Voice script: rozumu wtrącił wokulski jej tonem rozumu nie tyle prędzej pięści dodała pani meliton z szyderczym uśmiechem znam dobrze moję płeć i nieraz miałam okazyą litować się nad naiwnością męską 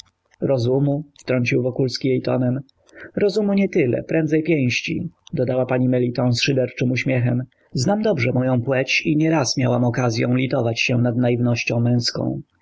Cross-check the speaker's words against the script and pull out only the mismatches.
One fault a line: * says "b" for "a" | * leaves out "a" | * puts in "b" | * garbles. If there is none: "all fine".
all fine